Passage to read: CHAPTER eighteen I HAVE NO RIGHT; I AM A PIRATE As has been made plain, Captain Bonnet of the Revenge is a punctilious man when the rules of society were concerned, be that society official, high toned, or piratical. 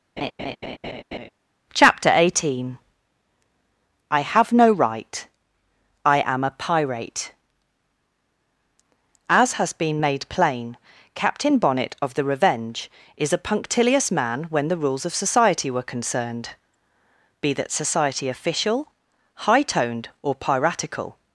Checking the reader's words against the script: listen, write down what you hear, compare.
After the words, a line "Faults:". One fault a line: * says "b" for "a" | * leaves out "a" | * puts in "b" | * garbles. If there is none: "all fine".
CHAPTER eighteen I HAVE NO RIGHT; I AM A PIRATE As has been made plain, Captain Bonnet of the Revenge is a punctilious man when the rules of society were concerned, be that society official, high toned, or piratical.
Faults:
all fine